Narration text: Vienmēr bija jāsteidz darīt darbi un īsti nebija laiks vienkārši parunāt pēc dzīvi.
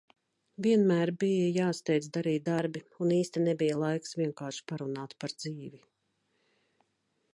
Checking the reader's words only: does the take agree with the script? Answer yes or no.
no